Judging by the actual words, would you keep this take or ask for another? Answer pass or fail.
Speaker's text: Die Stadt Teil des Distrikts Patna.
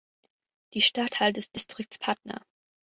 pass